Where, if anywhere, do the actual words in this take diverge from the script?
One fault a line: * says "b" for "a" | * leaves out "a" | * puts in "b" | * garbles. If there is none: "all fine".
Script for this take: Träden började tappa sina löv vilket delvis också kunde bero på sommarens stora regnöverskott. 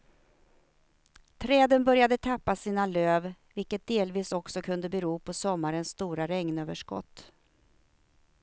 all fine